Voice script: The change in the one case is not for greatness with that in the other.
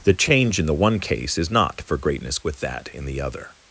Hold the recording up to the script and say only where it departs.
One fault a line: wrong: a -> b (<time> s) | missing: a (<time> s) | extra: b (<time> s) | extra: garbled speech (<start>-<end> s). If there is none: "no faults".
no faults